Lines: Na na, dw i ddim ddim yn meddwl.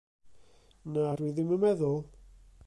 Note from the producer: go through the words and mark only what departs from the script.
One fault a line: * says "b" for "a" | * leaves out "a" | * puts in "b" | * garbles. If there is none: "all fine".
* leaves out "na"
* leaves out "ddim"